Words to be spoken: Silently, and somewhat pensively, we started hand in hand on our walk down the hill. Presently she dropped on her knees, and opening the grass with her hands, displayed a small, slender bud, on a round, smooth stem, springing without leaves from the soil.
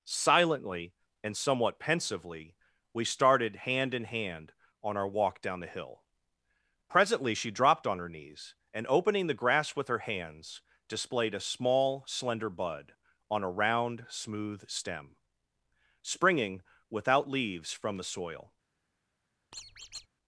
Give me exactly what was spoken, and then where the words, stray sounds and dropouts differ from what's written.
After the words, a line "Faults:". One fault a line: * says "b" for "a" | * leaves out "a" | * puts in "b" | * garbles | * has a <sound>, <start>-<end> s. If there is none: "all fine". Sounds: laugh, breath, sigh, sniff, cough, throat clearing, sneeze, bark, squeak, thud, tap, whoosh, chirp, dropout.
Silently, and somewhat pensively, we started hand in hand on our walk down the hill. Presently she dropped on her knees, and opening the grass with her hands, displayed a small, slender bud, on a round, smooth stem, springing without leaves from the soil.
Faults:
* has a squeak, 19.5-20.1 s